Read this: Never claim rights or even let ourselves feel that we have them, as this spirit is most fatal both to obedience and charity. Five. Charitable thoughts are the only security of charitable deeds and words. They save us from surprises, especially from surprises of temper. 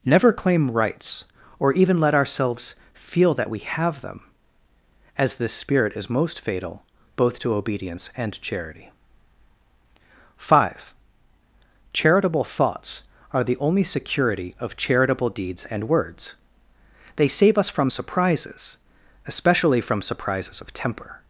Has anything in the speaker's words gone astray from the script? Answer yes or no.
no